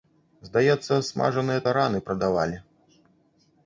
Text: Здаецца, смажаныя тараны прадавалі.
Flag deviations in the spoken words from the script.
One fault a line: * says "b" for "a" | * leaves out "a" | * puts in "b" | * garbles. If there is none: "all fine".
all fine